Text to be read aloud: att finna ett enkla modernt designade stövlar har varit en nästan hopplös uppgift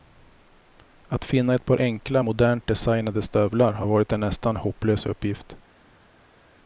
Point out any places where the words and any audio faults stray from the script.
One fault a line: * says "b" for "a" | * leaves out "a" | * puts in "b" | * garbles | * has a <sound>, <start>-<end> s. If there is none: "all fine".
* puts in "par"